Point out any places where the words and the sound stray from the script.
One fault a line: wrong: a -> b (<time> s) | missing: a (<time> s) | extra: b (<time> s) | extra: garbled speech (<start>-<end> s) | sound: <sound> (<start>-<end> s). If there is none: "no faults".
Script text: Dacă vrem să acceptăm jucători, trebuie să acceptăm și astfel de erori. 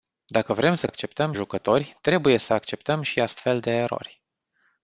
no faults